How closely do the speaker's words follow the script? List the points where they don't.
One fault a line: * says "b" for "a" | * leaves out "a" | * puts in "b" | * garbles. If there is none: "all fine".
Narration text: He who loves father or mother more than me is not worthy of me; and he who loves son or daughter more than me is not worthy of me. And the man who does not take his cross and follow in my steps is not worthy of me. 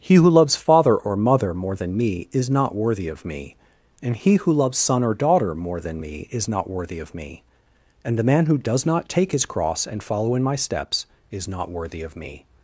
all fine